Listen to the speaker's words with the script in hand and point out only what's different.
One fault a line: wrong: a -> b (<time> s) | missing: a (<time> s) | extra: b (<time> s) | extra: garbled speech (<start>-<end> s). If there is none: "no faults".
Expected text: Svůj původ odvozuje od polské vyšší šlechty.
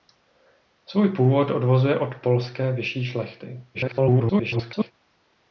extra: garbled speech (3.7-4.9 s)